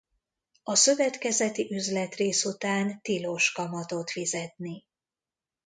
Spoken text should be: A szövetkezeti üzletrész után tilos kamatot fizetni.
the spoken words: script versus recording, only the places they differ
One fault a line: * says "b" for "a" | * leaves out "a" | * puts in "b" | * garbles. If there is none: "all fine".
all fine